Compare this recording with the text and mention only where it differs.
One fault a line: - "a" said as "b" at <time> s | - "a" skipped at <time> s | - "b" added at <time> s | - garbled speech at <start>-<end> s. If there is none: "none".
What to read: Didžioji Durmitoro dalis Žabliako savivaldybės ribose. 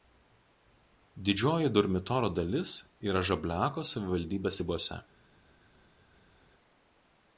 - "yra" added at 3.1 s